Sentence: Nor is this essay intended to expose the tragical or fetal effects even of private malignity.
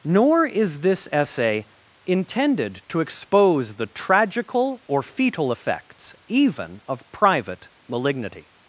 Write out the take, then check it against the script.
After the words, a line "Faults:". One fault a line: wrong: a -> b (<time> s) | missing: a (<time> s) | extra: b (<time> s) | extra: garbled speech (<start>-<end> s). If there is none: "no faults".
Nor is this essay intended to expose the tragical or fetal effects even of private malignity.
Faults:
no faults